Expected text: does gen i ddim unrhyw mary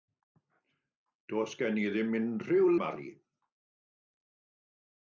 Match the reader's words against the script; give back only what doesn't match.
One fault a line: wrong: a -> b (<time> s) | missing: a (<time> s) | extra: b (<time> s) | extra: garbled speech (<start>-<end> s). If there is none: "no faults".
no faults